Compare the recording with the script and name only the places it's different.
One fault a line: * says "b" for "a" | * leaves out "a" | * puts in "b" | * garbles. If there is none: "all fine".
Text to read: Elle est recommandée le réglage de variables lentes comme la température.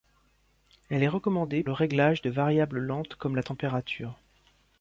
all fine